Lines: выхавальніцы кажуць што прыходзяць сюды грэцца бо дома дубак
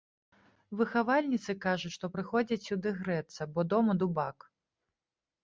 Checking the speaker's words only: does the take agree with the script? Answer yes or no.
yes